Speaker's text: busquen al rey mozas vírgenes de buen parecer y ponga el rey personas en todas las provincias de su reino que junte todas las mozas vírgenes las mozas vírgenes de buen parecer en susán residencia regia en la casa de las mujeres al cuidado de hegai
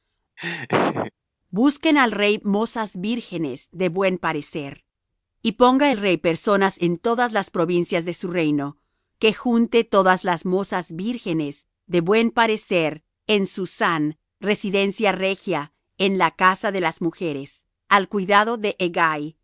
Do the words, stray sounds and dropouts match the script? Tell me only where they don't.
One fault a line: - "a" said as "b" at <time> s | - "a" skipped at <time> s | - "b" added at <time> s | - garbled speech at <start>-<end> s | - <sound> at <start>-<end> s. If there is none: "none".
- laugh at 0.4-1.1 s
- "las mozas vírgenes" skipped at 11.6 s